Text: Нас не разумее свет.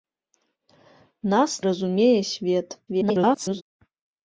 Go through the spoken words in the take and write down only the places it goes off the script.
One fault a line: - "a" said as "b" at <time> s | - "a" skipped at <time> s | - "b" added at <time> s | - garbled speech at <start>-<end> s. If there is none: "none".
- "не" skipped at 1.6 s
- garbled speech at 2.9-3.6 s